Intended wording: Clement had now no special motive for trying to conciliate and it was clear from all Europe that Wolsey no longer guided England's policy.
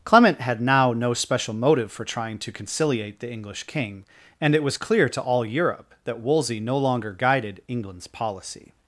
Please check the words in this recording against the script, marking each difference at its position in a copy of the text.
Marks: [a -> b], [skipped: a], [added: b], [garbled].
Clement had now no special motive for trying to conciliate [added: the English king] and it was clear [from -> to] all Europe that Wolsey no longer guided England's policy.